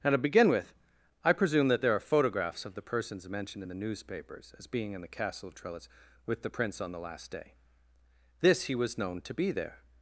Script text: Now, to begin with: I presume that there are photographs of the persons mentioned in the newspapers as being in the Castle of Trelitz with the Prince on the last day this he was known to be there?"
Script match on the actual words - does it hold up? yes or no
yes